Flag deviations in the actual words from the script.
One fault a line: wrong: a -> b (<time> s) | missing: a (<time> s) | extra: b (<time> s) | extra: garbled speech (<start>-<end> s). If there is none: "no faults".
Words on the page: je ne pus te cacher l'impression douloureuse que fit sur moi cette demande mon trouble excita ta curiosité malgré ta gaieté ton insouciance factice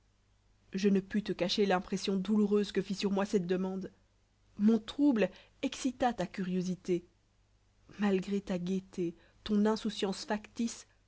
no faults